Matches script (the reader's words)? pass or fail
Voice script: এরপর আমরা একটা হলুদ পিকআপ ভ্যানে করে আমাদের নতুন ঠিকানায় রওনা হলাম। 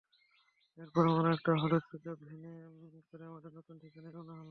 pass